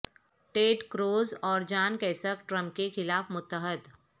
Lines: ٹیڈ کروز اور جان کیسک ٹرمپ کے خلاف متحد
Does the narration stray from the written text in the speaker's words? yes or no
no